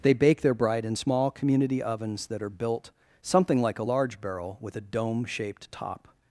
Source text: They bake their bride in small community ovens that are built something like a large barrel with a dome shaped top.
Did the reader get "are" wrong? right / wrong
right